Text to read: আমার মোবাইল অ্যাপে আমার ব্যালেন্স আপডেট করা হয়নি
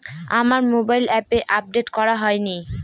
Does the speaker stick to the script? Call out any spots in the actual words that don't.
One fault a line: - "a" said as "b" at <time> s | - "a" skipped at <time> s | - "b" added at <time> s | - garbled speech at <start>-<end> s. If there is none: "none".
- "আমার ব্যালেন্স" skipped at 1.4 s